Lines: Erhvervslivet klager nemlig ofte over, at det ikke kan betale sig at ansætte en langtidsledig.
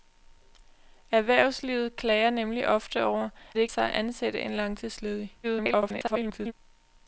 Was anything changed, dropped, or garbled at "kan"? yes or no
yes